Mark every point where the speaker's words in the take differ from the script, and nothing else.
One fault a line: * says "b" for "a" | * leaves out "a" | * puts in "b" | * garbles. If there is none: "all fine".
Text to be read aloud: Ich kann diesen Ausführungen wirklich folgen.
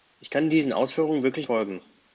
all fine